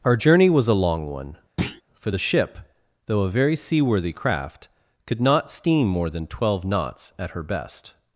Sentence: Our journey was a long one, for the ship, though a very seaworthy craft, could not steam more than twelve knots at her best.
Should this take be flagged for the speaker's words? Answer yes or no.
no